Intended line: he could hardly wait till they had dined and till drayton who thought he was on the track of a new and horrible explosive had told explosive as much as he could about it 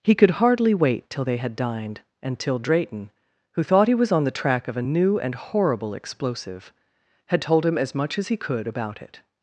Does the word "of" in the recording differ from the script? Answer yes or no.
no